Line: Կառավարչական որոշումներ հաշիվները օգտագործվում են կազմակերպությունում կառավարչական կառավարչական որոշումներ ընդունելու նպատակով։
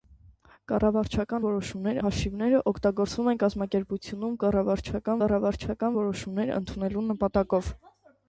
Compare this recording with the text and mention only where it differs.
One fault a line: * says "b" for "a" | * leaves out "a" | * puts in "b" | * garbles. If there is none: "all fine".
all fine